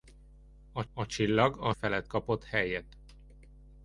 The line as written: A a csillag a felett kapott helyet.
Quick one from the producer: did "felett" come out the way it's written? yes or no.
yes